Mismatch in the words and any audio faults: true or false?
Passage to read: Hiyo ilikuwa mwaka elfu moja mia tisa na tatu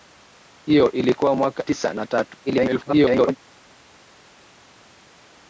true